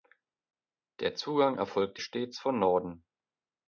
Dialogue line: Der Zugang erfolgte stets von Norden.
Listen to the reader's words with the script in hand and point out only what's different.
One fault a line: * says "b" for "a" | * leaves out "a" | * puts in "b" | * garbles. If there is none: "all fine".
all fine